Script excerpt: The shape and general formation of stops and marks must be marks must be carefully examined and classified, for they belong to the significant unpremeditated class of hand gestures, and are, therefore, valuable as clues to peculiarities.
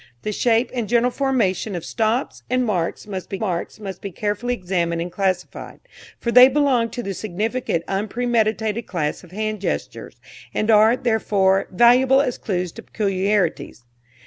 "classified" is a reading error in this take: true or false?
false